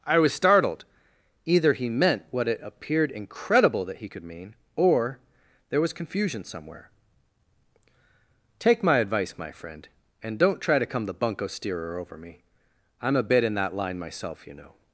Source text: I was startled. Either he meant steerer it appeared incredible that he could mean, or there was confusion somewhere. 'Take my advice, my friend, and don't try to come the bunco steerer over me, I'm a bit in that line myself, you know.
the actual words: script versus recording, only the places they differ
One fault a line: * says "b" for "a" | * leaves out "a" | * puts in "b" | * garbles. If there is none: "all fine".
* says "what" for "steerer"